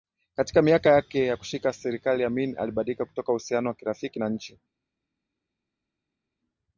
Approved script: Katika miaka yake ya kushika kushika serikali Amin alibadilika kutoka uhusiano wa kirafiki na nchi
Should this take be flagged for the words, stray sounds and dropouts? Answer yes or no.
yes